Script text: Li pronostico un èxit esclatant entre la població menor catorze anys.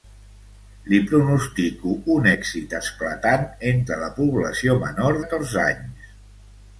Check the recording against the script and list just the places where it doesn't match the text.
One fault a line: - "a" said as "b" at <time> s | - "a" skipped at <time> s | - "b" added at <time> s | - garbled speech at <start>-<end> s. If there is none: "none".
none